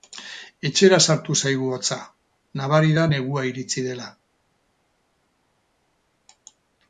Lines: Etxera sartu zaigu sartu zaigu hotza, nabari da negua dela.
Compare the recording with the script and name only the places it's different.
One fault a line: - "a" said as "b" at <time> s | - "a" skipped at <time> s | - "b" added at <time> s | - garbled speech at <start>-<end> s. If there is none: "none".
- "sartu zaigu" skipped at 1.7 s
- "iritsi" added at 3.5 s